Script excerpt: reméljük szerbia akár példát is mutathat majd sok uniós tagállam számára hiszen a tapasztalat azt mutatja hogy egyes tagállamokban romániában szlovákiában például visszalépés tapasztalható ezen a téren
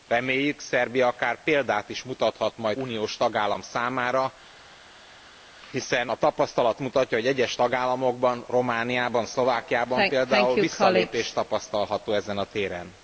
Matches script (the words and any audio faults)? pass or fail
fail